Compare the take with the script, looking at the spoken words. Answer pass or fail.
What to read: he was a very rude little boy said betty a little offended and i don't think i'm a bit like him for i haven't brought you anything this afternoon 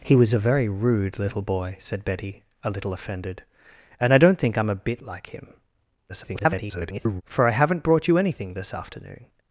fail